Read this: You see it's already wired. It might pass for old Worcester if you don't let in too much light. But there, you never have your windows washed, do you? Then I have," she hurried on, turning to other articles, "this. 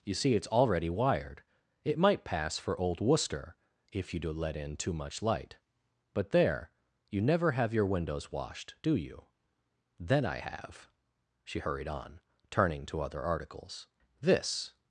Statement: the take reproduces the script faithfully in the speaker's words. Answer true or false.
false